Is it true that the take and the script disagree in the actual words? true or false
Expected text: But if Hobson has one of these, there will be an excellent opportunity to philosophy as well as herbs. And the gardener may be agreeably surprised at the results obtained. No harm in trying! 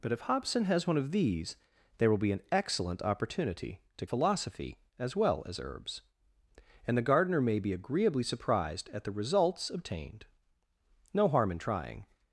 false